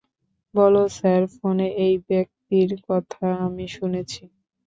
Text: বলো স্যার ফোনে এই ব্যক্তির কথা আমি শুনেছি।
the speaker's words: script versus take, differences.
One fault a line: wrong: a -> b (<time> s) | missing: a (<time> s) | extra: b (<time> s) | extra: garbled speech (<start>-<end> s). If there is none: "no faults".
no faults